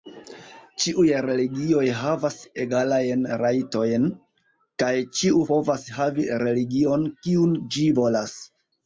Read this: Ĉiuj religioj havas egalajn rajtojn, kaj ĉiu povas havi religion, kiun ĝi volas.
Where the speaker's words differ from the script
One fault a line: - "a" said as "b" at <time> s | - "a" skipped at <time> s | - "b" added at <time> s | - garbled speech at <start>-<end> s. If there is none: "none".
none